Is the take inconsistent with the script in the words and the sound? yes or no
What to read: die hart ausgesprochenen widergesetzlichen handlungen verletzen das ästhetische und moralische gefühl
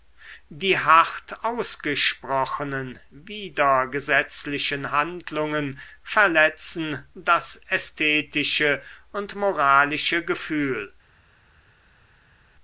no